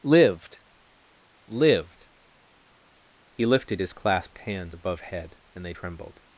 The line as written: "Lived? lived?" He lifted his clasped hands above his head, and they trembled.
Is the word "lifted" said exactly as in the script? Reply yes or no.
yes